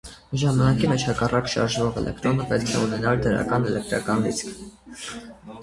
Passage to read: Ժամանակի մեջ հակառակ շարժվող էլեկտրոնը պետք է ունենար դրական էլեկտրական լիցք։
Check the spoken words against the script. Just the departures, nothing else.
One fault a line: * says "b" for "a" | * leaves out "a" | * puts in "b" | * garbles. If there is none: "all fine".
all fine